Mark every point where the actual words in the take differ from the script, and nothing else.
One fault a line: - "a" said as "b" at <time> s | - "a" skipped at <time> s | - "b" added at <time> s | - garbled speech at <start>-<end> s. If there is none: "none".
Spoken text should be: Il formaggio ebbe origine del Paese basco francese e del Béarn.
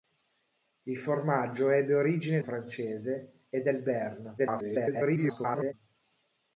- "del Paese basco" skipped at 2.4 s
- garbled speech at 4.4-5.7 s